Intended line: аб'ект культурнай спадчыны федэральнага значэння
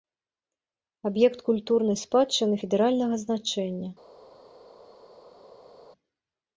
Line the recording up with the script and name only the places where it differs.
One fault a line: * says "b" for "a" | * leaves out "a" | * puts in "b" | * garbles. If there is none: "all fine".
all fine